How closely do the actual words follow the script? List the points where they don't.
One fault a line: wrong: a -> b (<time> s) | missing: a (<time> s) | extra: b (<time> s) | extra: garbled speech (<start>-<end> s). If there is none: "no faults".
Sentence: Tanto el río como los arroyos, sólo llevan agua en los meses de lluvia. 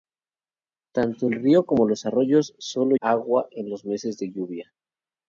missing: llevan (2.9 s)